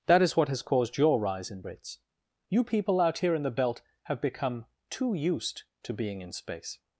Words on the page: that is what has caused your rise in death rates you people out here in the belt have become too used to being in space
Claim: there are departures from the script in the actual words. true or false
true